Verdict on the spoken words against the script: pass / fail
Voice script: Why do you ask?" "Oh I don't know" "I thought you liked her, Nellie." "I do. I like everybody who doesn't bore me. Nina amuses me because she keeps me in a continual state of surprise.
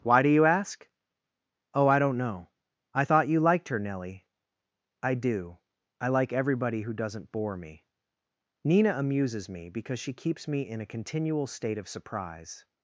pass